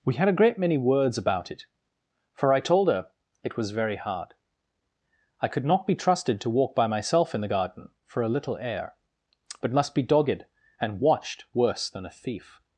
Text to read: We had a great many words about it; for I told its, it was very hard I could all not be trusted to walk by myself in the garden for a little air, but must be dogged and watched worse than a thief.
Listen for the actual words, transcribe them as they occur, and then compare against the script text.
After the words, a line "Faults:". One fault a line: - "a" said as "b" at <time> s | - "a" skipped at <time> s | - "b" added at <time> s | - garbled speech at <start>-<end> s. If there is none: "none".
We had a great many words about it; for I told her, it was very hard I could not be trusted to walk by myself in the garden for a little air, but must be dogged and watched worse than a thief.
Faults:
- "its" said as "her" at 2.9 s
- "all" skipped at 5.7 s